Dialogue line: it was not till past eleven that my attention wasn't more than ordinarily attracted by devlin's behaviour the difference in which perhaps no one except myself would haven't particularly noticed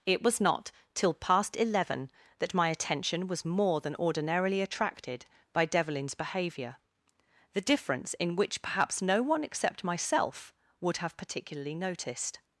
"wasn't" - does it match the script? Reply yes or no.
no